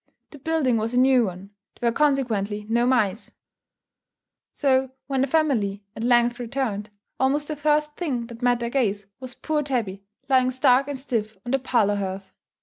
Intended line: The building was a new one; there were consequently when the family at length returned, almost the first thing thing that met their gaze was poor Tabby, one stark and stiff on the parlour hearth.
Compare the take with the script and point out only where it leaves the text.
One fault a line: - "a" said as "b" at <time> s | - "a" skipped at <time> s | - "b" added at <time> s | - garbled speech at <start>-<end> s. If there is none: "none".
- "no mice so" added at 2.7 s
- "thing" skipped at 8.3 s
- "one" said as "lying" at 10.3 s